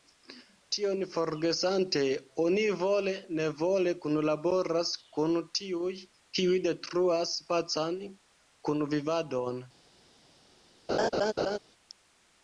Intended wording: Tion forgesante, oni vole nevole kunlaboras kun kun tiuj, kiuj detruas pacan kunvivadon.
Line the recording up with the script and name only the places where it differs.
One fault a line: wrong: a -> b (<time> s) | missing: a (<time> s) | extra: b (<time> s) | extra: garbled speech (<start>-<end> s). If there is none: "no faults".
missing: kun (5.4 s)